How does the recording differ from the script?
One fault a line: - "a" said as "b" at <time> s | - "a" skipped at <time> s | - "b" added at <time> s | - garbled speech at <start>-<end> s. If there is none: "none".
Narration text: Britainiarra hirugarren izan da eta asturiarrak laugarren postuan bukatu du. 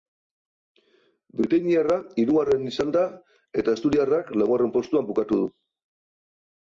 none